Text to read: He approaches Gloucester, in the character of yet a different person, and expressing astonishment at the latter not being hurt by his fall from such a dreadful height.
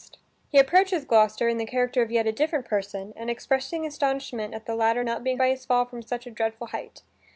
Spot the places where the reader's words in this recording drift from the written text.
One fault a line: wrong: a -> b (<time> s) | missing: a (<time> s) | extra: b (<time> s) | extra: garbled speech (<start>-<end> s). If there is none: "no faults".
missing: hurt (5.4 s)